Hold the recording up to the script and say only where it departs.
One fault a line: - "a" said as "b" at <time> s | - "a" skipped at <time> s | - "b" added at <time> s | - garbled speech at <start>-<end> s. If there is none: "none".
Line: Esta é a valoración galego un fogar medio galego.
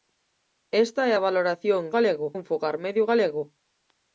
none